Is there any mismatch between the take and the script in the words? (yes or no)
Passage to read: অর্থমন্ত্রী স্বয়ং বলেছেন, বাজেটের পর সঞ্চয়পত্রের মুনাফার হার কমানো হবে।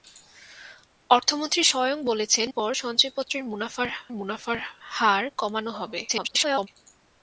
yes